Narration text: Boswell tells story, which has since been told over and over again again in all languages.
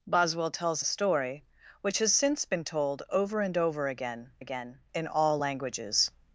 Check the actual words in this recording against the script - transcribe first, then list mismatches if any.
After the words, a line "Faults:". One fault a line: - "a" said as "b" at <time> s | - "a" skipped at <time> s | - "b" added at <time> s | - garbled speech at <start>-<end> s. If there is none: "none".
Boswell tells story, which has since been told over and over again again in all languages.
Faults:
none